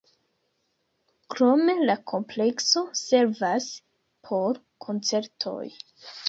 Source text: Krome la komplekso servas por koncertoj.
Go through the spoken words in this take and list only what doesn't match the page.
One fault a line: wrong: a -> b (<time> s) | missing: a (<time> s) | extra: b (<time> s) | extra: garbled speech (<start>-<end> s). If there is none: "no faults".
no faults